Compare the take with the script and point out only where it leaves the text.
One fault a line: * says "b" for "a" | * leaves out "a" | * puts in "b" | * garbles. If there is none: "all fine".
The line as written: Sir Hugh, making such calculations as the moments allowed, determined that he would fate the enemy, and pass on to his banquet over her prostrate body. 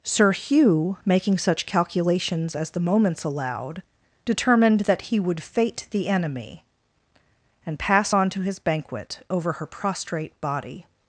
all fine